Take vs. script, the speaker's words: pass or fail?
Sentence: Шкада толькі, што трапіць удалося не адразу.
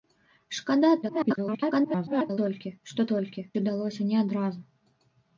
fail